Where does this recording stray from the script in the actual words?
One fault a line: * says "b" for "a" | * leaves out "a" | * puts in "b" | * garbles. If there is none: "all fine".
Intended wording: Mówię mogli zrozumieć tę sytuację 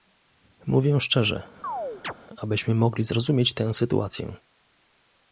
* puts in "szczerze abyśmy"